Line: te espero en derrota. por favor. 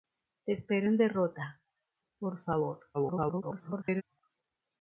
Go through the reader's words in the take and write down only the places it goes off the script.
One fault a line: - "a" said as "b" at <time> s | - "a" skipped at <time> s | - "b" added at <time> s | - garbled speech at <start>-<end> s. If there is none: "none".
- garbled speech at 2.9-4.0 s